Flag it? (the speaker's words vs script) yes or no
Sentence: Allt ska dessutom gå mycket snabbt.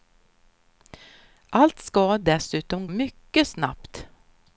yes